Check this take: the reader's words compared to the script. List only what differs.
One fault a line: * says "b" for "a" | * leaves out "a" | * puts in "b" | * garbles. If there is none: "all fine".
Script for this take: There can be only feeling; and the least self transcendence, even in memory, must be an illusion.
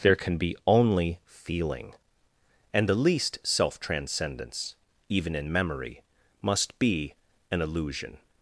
all fine